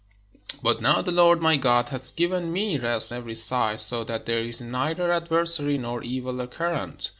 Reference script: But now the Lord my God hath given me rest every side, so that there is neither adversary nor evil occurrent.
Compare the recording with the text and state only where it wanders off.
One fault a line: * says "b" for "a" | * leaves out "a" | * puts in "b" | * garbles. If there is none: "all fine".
all fine